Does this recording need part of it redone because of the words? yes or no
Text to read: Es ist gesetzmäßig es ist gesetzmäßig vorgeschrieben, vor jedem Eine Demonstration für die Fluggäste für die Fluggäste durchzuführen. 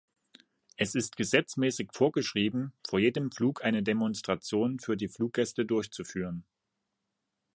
yes